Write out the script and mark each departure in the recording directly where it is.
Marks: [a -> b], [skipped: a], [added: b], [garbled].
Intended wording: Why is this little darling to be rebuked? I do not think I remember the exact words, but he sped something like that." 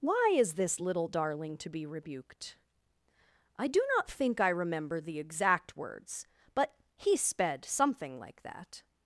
Why is this little darling to be rebuked? I do not think I remember the exact words, but he sped something like that."